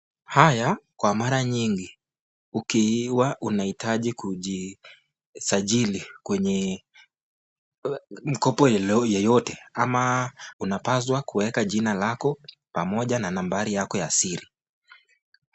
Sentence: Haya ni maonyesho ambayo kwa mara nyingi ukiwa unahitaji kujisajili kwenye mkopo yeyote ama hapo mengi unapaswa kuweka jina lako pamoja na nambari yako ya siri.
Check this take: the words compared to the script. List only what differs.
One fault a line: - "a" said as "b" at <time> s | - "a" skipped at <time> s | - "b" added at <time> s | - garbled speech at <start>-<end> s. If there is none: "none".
- "ni maonyesho ambayo" skipped at 0.8 s
- "hapo mengi" skipped at 10.3 s